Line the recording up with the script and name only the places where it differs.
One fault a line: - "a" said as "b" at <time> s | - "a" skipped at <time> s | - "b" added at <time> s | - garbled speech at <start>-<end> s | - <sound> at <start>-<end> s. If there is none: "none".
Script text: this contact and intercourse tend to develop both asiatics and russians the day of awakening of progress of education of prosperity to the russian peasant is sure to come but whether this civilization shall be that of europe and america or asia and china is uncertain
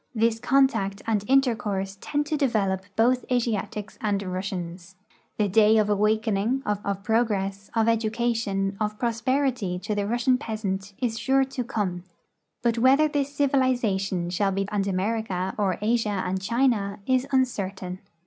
- "of" added at 6.8 s
- "that of europe" skipped at 14.6 s